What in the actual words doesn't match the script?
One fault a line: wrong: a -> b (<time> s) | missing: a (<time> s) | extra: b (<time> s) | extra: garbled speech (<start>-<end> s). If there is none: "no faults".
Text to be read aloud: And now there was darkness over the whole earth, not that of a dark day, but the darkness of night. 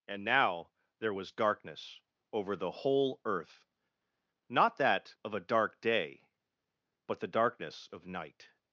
no faults